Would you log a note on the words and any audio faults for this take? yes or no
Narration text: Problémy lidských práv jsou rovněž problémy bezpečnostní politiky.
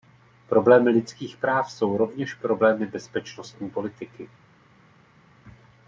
no